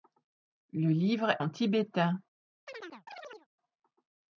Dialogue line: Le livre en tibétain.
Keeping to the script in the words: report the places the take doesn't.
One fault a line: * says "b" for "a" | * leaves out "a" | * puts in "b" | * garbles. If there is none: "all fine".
all fine